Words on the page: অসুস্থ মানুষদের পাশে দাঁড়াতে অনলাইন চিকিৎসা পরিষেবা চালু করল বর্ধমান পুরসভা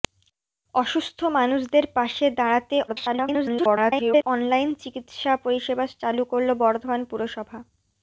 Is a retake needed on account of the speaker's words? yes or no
yes